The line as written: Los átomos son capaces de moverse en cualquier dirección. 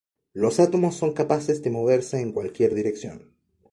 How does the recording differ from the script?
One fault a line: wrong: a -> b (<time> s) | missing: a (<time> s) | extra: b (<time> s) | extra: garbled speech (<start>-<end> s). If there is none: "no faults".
no faults